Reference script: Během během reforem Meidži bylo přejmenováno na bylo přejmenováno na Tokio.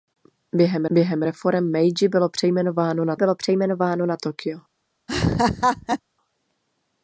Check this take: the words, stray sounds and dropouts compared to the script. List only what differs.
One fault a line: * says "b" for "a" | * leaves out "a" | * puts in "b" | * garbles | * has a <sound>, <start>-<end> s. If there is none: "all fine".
* has a laugh, 5.1-6.0 s